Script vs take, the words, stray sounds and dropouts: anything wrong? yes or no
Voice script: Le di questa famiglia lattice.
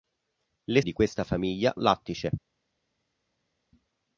no